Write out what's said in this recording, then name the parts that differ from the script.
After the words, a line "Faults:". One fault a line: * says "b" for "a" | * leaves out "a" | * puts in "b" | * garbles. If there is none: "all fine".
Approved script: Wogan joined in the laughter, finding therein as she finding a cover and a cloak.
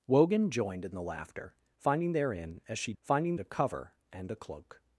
Wogan joined in the laughter, finding therein as she finding a cover and a cloak.
Faults:
all fine